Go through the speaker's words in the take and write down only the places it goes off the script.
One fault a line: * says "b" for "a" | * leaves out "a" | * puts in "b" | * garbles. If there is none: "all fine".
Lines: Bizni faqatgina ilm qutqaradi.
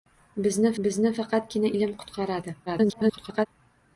* puts in "bizni"
* garbles